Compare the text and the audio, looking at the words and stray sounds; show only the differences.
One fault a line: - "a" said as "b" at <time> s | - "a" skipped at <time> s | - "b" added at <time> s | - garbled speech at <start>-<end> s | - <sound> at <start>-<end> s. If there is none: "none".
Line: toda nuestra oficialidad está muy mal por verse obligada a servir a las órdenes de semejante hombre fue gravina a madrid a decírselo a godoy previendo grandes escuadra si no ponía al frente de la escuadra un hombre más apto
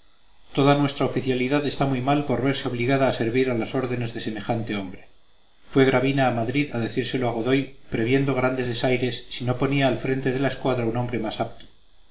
- "escuadra" said as "desaires" at 8.7 s